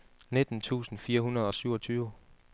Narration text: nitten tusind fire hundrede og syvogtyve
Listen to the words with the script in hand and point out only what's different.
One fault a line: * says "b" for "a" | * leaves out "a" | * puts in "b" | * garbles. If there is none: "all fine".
all fine